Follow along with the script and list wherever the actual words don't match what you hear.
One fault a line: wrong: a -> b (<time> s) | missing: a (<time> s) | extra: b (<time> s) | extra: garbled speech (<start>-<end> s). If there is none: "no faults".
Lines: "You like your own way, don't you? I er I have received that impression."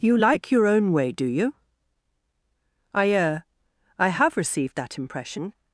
wrong: don't -> do (1.1 s)